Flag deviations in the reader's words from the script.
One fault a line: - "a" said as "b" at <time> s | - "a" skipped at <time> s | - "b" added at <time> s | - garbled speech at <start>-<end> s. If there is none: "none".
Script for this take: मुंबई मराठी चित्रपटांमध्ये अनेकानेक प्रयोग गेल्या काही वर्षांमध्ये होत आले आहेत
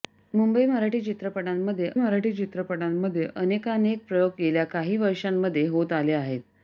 - "मराठी चित्रपटांमध्ये" added at 1.9 s